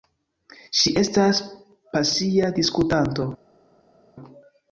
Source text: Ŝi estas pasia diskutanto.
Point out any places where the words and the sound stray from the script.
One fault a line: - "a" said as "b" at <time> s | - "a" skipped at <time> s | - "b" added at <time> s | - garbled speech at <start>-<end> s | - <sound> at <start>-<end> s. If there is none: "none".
none